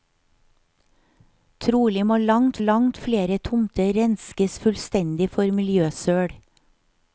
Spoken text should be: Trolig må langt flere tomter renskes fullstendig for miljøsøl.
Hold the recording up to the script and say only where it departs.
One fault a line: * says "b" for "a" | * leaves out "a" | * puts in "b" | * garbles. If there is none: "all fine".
* puts in "langt"